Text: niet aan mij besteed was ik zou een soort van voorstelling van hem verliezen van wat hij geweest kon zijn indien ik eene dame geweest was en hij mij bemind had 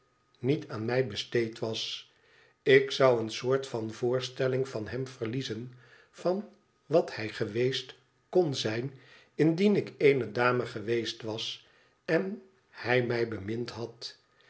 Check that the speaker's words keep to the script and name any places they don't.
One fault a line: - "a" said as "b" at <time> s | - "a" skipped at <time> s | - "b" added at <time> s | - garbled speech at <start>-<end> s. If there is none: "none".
none